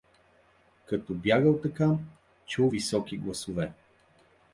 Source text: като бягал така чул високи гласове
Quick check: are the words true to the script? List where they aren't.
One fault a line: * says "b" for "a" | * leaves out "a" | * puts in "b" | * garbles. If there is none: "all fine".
all fine